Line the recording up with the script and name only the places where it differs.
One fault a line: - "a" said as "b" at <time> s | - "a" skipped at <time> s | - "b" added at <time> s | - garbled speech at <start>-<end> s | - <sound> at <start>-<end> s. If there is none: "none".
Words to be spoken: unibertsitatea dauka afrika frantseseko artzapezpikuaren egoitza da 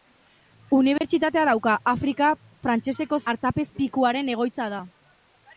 - dropout at 1.0-1.0 s